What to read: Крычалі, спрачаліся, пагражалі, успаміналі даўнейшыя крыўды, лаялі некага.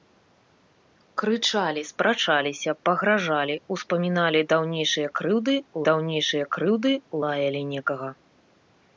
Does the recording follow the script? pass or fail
fail